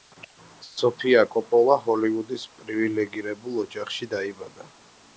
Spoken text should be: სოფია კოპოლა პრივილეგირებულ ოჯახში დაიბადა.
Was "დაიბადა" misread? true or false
false